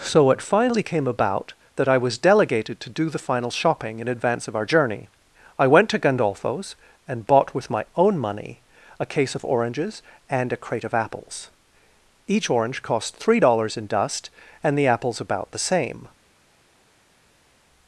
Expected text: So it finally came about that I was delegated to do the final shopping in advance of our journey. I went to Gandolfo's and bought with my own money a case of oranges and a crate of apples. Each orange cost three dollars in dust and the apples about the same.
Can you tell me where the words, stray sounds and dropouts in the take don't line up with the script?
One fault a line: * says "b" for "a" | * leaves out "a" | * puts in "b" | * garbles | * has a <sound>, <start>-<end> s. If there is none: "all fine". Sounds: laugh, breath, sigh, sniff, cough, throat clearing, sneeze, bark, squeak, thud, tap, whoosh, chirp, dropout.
all fine